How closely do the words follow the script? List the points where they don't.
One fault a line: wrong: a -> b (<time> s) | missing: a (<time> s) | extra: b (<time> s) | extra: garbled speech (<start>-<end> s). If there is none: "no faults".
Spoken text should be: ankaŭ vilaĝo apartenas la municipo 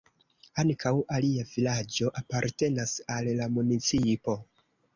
extra: alia (1.2 s)
extra: al (3.2 s)